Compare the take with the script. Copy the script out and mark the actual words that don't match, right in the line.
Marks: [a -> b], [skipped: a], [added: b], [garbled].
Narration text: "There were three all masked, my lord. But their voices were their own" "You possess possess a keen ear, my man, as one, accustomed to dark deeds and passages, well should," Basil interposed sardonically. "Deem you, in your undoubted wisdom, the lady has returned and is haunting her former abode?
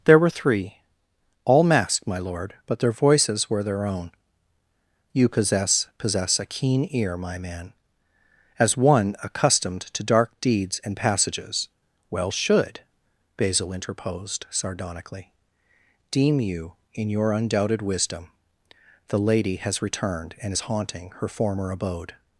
"There were three all masked, my lord. But their voices were their own" "You possess possess a keen ear, my man, as one, accustomed to dark deeds and passages, well should," Basil interposed sardonically. "Deem you, in your undoubted wisdom, the lady has returned and is haunting her former abode?